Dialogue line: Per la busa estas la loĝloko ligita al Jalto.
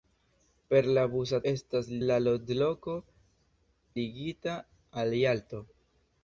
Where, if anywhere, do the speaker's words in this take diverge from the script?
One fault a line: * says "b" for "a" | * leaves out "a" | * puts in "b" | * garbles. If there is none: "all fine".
all fine